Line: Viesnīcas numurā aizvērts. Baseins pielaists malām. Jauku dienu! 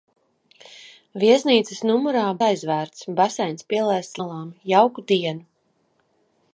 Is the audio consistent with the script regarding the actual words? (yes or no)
yes